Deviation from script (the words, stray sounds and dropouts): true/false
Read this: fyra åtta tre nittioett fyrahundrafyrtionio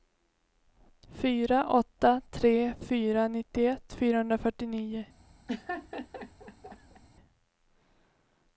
true